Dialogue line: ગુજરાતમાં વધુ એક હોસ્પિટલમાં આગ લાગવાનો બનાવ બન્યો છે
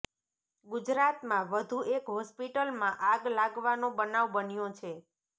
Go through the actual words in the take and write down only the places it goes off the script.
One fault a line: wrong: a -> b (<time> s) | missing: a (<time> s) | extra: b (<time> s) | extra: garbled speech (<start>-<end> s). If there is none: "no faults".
no faults